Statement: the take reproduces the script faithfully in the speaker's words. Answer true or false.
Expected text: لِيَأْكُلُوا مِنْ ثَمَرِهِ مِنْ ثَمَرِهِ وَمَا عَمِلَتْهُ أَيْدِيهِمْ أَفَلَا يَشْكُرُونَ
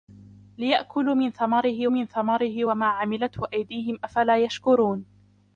true